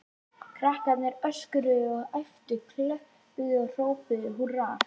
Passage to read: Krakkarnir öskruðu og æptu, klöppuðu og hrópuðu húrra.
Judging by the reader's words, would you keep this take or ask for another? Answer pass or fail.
pass